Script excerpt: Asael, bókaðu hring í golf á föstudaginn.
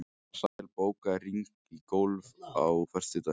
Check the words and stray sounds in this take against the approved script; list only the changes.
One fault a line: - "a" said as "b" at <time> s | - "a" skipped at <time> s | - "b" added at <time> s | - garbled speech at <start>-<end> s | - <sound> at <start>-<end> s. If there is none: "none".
- dropout at 0.5-0.6 s